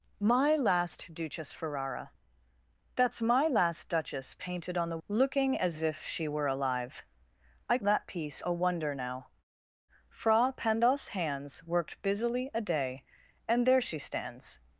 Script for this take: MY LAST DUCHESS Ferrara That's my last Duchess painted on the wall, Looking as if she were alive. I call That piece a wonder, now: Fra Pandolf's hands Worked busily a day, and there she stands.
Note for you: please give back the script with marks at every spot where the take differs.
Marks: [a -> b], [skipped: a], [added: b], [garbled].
MY LAST DUCHESS Ferrara That's my last Duchess painted on the [skipped: wall,] Looking as if she were alive. I [skipped: call] That piece a wonder, now: Fra Pandolf's hands Worked busily a day, and there she stands.